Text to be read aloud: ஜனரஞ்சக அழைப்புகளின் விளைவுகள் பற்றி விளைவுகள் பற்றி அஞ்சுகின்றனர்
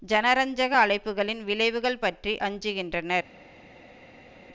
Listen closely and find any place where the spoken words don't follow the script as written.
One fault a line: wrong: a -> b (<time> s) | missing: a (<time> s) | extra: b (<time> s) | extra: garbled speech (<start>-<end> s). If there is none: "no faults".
missing: விளைவுகள் பற்றி (2.3 s)